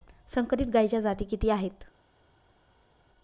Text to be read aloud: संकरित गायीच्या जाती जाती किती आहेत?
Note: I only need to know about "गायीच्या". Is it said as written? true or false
true